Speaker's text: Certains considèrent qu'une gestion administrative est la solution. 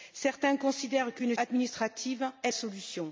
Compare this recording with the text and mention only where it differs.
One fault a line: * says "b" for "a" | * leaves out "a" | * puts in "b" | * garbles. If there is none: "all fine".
* leaves out "gestion"
* leaves out "la"